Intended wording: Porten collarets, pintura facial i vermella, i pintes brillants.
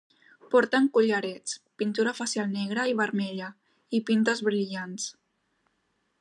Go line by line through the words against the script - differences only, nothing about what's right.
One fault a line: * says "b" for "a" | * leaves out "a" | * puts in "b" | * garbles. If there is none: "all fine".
* puts in "negra"